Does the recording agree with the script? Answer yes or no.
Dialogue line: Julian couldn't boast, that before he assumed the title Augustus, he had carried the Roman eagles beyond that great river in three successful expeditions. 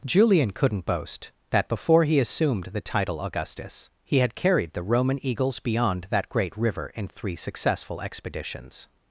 yes